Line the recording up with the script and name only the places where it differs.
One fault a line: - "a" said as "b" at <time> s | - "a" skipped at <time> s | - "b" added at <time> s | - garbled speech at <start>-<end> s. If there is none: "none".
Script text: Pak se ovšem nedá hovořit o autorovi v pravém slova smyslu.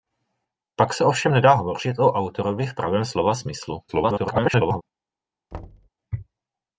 - garbled speech at 3.9-4.8 s